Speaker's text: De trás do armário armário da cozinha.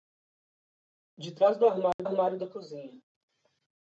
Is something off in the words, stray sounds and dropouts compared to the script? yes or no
yes